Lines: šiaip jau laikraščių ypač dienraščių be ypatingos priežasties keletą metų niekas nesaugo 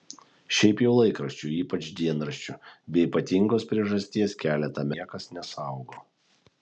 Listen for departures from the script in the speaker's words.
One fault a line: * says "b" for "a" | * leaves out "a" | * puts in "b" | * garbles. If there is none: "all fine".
* leaves out "metų"